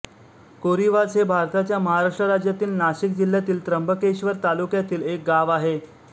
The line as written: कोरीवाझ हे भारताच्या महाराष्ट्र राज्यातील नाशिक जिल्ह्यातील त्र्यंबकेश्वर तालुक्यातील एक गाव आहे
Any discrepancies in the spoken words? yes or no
no